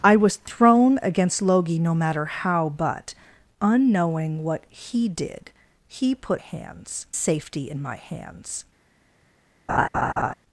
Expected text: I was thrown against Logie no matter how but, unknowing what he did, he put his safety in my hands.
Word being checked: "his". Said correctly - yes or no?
no